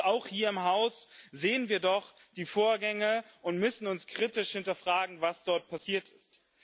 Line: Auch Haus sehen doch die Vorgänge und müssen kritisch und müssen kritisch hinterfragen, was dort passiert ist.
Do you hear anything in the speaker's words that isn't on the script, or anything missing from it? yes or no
yes